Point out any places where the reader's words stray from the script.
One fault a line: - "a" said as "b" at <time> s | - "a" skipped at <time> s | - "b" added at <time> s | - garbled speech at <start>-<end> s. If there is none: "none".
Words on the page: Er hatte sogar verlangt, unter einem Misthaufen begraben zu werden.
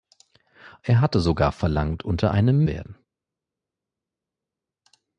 - "Misthaufen begraben zu" skipped at 2.7 s